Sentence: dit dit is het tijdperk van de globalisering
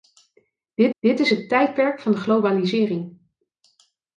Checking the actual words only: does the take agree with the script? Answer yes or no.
yes